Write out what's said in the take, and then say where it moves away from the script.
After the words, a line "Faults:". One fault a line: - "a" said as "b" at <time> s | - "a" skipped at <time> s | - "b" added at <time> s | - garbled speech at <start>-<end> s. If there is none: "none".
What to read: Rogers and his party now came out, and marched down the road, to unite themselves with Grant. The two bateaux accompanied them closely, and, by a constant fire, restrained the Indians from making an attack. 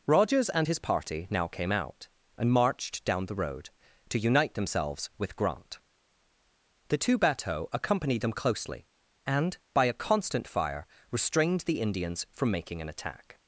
Rogers and his party now came out, and marched down the road, to unite themselves with Grant. The two bateaux accompanied them closely, and, by a constant fire, restrained the Indians from making an attack.
Faults:
none